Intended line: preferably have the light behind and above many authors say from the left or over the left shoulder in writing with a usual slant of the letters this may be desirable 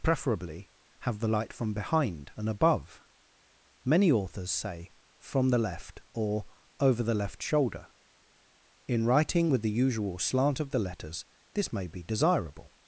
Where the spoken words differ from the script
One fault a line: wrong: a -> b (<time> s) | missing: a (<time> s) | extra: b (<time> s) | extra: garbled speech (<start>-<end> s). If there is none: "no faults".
extra: from (1.5 s)
wrong: a -> the (9.6 s)